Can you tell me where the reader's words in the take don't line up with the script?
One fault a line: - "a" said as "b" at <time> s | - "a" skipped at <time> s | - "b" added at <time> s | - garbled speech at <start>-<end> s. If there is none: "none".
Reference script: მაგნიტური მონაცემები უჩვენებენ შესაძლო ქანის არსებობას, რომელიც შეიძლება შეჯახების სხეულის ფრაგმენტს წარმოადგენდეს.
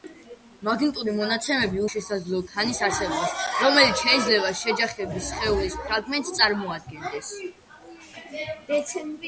- "უჩვენებენ" skipped at 1.8 s